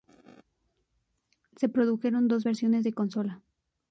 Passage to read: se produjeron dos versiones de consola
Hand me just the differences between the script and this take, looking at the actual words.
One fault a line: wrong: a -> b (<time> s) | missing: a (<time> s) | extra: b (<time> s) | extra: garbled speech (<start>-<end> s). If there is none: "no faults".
no faults